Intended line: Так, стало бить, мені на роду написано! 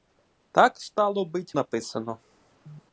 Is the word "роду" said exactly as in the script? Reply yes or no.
no